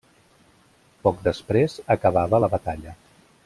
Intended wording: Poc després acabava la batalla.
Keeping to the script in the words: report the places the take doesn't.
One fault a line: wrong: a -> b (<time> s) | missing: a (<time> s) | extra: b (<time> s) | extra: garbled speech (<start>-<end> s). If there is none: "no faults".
no faults